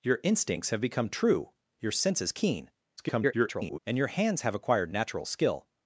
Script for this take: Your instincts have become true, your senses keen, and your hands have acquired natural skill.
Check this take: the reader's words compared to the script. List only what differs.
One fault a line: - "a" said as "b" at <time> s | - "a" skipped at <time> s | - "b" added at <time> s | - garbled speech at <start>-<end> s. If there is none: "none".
- garbled speech at 3.0-3.8 s